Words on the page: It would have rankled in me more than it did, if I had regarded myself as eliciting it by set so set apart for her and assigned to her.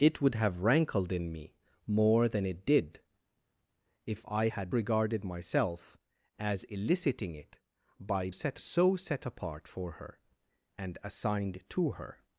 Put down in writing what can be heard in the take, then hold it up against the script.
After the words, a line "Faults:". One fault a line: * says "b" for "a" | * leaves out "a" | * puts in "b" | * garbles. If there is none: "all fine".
It would have rankled in me more than it did, if I had regarded myself as eliciting it by set so set apart for her and assigned to her.
Faults:
all fine